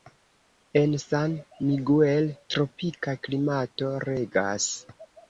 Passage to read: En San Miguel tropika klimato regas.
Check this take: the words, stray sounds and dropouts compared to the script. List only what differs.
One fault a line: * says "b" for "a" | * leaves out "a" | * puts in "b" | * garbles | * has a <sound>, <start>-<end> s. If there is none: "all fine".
all fine